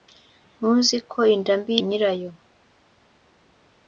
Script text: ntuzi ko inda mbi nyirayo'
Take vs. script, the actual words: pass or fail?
pass